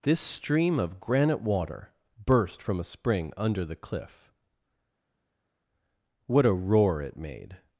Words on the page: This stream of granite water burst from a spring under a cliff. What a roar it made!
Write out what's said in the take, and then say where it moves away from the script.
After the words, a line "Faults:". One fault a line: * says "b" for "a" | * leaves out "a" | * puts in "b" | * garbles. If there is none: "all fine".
This stream of granite water burst from a spring under the cliff. What a roar it made!
Faults:
* says "the" for "a"